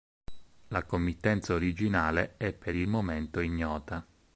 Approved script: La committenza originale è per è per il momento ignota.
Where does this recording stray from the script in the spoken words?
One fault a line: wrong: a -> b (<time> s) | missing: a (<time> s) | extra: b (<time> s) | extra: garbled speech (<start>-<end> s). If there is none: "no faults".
missing: è per (2.8 s)